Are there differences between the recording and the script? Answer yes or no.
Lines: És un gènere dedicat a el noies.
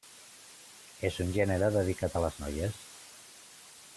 yes